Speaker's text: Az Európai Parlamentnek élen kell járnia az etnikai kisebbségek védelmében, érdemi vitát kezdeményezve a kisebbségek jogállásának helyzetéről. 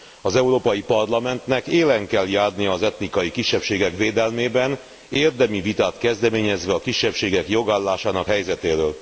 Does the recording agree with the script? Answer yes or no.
yes